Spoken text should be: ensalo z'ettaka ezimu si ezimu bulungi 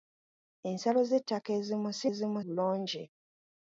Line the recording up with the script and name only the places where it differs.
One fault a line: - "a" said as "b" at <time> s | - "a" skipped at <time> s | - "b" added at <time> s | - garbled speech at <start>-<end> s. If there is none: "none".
none